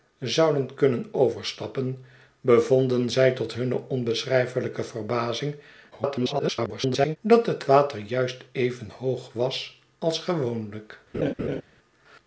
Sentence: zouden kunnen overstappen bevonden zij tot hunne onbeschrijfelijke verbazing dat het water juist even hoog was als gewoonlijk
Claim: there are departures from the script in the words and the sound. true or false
true